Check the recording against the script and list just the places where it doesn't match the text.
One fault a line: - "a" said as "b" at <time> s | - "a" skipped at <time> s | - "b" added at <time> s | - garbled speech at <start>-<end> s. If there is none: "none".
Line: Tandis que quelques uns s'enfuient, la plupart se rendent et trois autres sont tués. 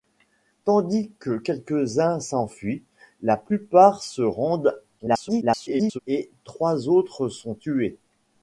- garbled speech at 5.0-6.0 s